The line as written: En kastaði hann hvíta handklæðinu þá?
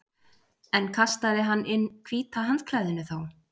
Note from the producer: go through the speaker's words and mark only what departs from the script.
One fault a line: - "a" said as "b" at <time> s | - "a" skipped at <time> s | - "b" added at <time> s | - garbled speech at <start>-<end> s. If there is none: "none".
- "inn" added at 1.8 s